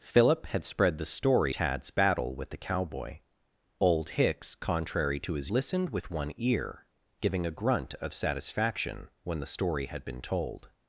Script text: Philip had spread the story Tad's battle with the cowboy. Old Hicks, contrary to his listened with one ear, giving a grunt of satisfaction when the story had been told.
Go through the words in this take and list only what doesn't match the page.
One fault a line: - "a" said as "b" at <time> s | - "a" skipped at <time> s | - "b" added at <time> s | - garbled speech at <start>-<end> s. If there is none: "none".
none